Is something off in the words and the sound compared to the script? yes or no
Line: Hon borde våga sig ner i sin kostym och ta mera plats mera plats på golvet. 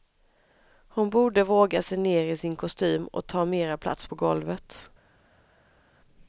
yes